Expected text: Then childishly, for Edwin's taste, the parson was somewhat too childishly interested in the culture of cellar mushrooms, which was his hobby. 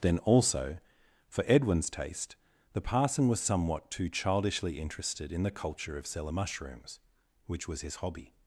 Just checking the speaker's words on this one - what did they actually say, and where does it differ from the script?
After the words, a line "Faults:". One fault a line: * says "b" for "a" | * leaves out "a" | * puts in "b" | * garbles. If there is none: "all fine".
Then also, for Edwin's taste, the parson was somewhat too childishly interested in the culture of cellar mushrooms, which was his hobby.
Faults:
* says "also" for "childishly"